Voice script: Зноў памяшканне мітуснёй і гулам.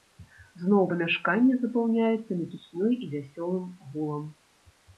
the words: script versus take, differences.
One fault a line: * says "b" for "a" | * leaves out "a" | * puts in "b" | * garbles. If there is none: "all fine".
* puts in "запаўняецца"
* puts in "вясёлым"